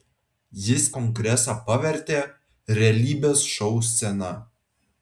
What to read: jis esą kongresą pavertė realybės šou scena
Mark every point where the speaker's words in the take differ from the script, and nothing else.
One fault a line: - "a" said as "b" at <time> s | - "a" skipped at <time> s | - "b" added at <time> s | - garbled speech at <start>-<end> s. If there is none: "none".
- "esą" skipped at 0.8 s